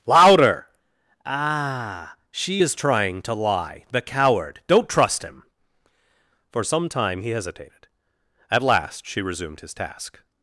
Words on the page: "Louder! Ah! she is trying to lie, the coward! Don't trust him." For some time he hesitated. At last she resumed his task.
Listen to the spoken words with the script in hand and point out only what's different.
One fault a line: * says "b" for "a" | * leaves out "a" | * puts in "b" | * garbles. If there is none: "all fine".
all fine